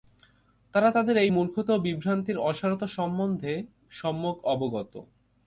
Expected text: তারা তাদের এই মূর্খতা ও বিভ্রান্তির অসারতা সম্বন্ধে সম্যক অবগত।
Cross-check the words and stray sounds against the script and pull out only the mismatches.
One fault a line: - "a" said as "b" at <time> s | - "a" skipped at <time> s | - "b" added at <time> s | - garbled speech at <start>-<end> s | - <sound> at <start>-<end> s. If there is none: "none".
none